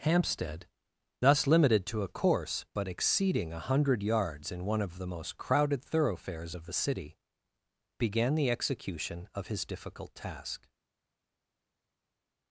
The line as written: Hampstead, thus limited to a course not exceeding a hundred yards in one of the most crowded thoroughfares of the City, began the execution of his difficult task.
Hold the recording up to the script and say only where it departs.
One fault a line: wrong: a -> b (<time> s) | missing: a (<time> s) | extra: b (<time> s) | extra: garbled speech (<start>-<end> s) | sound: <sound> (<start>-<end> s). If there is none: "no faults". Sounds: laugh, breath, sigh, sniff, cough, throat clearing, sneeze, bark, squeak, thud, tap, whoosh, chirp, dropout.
wrong: not -> but (2.7 s)